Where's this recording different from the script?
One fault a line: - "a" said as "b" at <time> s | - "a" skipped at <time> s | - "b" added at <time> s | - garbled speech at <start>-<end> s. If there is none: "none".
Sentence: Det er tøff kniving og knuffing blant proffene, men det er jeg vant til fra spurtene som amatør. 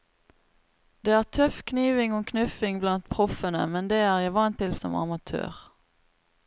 - "fra spurtene" skipped at 4.7 s